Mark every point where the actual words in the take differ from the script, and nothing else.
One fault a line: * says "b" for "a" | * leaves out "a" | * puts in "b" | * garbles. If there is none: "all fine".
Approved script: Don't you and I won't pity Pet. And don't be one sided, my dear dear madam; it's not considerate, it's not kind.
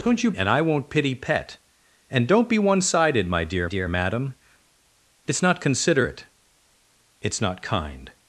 all fine